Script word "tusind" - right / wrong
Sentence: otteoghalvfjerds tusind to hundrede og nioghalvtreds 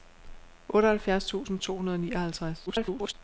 right